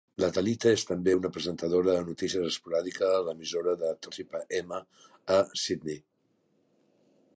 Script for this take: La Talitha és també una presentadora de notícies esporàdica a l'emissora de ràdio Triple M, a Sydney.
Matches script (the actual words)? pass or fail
fail